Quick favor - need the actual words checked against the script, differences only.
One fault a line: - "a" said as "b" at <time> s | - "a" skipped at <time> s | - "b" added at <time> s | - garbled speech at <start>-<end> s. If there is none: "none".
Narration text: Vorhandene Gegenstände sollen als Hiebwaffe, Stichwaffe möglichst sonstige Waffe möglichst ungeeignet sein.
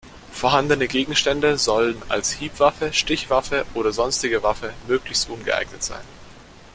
- "möglichst" said as "oder" at 3.7 s